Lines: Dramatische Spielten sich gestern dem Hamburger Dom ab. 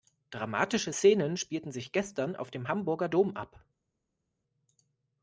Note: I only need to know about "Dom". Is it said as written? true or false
true